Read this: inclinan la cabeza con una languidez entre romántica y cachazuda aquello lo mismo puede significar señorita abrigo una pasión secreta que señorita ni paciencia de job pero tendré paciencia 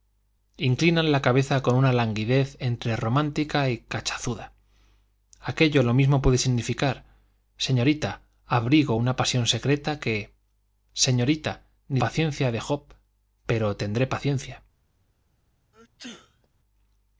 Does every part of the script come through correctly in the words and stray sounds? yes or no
no